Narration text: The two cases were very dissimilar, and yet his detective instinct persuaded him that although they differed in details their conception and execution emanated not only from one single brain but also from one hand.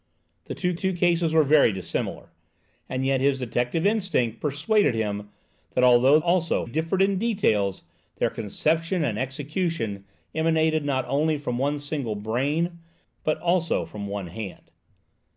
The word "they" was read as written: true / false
false